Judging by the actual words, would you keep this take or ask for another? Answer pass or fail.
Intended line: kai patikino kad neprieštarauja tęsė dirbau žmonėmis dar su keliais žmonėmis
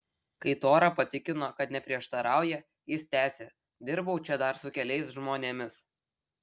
fail